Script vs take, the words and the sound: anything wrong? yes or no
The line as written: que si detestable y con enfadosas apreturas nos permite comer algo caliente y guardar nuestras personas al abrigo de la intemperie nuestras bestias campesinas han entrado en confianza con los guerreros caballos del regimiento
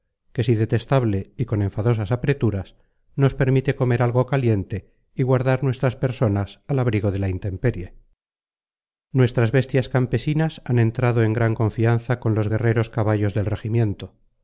yes